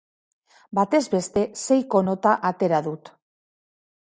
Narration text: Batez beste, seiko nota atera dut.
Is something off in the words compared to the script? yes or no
no